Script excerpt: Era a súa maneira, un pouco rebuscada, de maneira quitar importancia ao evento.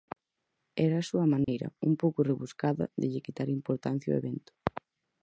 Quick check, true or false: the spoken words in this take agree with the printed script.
false